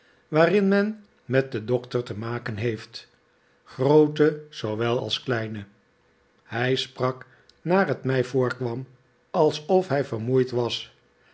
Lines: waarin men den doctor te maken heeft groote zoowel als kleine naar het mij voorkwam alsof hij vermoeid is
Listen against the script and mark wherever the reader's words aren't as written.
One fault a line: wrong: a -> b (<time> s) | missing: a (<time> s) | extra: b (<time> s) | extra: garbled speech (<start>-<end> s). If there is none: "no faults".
extra: met (1.2 s)
extra: hij sprak (6.4 s)
wrong: is -> was (10.5 s)